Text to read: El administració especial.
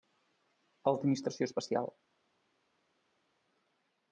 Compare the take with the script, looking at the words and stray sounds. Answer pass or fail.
pass